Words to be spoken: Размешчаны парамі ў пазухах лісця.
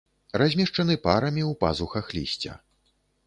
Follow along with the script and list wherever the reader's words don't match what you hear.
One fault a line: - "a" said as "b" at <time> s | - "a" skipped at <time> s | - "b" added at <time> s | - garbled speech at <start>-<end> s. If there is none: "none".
none